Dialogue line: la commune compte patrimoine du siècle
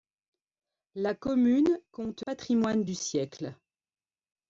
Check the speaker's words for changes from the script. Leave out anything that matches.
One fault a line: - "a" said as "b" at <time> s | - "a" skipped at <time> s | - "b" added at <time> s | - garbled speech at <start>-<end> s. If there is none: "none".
none